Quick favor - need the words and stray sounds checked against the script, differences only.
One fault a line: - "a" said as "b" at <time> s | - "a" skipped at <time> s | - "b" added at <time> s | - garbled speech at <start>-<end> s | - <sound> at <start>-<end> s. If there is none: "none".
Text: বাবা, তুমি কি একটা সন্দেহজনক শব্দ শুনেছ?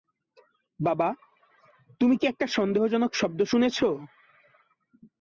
none